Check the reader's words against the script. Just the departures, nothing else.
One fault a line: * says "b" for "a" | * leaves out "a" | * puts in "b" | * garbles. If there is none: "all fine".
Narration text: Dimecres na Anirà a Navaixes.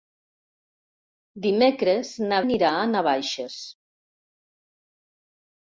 all fine